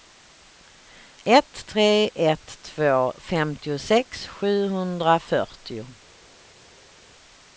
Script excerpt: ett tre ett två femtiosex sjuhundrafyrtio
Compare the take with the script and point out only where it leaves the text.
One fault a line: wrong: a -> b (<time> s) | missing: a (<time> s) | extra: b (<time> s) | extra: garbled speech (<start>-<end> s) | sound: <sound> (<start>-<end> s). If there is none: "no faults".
no faults